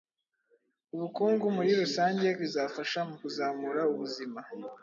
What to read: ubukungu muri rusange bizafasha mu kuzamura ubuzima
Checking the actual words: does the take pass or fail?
pass